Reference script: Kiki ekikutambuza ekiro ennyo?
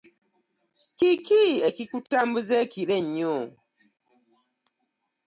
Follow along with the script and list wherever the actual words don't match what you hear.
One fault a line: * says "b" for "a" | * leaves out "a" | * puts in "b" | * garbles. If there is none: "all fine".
all fine